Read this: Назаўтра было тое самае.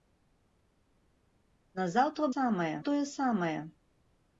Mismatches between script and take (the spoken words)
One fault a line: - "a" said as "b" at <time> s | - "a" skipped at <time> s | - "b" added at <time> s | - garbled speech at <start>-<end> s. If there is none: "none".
- "было" said as "самае" at 2.3 s